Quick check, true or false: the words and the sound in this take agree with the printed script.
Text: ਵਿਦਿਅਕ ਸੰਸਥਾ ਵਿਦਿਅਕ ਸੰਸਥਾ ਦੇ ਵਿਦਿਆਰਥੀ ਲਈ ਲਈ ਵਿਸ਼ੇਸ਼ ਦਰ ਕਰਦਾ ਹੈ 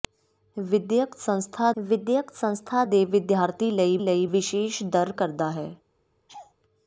false